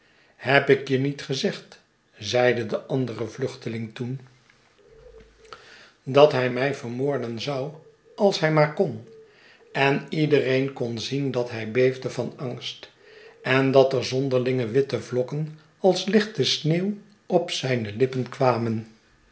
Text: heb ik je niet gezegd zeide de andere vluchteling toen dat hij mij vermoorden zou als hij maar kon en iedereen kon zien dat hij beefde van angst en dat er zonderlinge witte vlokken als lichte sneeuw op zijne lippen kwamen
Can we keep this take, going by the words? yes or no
yes